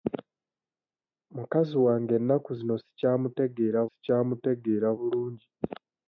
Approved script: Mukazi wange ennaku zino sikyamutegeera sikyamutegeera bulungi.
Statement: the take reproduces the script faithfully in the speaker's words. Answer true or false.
true